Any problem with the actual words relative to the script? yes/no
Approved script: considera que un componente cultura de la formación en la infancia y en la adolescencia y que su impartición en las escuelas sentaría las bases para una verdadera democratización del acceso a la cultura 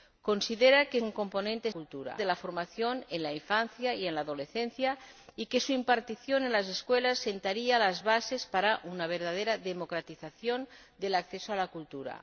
no